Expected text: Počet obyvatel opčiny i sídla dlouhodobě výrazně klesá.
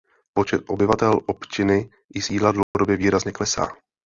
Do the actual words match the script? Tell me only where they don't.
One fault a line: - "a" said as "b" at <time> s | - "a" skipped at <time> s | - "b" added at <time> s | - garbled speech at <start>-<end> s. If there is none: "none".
none